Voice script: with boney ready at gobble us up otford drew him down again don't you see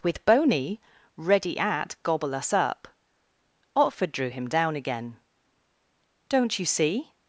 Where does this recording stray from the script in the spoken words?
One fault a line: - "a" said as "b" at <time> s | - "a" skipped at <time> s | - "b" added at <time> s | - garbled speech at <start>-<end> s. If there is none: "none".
none